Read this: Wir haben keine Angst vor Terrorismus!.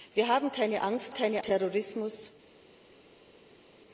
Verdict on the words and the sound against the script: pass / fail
fail